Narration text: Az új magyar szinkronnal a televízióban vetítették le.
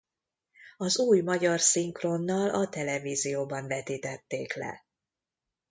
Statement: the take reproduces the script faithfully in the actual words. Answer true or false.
true